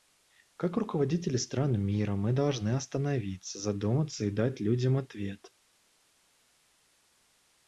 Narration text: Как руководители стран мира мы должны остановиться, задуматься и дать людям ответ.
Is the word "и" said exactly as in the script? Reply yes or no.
yes